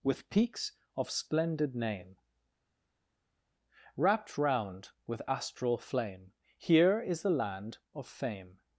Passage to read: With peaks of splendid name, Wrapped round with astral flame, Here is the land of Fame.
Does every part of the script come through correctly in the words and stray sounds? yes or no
yes